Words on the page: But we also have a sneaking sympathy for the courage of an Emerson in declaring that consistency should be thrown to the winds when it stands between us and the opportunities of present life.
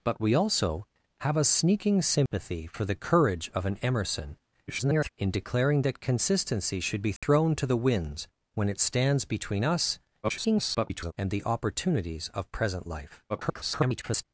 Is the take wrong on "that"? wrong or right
right